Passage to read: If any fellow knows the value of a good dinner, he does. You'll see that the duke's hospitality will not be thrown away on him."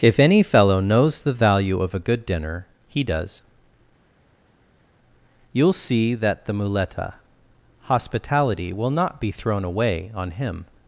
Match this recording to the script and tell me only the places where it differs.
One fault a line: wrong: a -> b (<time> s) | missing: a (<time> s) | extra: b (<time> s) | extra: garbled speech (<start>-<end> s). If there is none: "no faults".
wrong: duke's -> muleta (6.5 s)